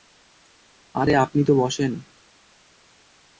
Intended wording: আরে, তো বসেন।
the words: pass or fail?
fail